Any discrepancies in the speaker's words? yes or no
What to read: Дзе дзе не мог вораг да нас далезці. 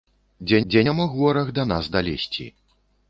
no